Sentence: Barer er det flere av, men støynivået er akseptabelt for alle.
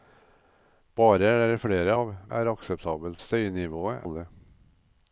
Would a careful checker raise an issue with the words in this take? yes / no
yes